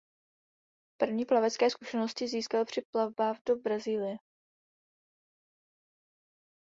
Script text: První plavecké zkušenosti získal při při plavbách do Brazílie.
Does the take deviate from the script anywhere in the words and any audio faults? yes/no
yes